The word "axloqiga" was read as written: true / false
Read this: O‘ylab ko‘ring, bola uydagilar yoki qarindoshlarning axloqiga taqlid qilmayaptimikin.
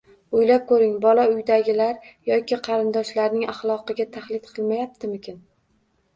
true